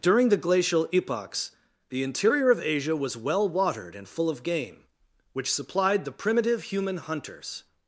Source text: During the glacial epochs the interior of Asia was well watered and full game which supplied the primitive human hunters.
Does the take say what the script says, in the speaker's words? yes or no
no